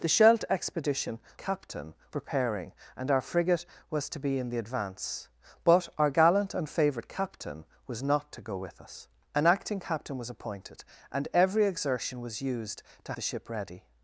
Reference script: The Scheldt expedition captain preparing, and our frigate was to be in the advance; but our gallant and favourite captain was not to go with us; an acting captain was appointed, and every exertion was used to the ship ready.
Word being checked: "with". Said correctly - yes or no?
yes